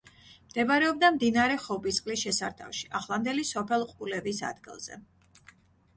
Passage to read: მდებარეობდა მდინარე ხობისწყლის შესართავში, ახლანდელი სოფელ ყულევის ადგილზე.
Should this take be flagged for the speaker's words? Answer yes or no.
no